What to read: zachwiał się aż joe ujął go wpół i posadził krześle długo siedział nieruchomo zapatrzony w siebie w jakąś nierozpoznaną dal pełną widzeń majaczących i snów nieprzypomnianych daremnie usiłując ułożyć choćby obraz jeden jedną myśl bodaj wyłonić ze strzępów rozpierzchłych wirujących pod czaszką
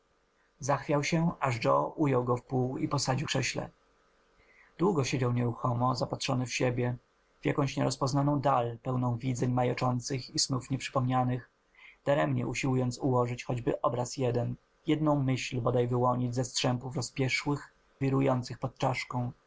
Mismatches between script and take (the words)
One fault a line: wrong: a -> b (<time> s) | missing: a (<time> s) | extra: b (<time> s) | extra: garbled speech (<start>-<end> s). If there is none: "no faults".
no faults